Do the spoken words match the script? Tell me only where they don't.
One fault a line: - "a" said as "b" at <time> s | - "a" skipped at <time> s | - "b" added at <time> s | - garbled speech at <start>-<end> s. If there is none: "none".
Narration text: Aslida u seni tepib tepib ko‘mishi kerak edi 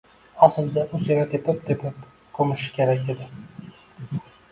none